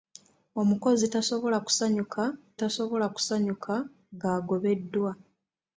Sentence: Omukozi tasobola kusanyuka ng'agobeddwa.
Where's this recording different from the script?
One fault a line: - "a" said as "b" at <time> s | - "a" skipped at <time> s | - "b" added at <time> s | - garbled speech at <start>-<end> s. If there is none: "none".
- "tasobola kusanyuka" added at 2.6 s